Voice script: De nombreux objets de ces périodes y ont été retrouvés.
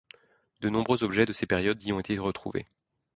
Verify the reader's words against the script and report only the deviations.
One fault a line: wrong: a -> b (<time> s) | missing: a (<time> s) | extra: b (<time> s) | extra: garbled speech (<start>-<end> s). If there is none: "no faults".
no faults